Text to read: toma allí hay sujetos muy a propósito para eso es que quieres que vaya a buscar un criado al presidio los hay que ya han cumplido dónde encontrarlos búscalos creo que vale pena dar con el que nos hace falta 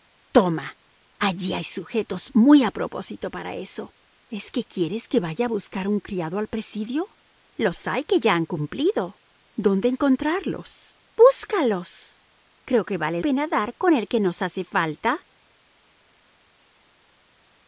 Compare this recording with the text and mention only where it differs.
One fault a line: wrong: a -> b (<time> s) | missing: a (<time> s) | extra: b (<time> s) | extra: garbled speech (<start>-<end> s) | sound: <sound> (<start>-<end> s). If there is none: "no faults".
no faults